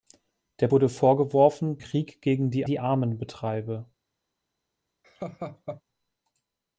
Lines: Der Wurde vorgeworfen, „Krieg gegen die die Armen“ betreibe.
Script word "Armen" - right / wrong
right